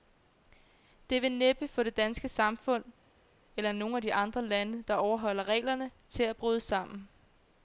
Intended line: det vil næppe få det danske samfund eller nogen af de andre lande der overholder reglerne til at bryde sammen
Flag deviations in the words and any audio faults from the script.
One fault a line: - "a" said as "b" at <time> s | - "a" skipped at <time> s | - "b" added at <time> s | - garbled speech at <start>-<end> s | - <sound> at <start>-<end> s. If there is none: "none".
none